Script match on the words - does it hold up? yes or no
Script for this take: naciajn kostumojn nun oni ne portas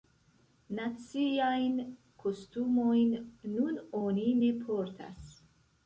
yes